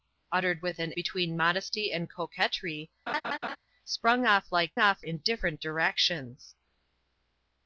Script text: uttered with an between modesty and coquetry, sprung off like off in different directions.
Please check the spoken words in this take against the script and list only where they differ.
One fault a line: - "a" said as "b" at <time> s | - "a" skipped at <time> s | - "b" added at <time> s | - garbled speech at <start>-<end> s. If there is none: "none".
none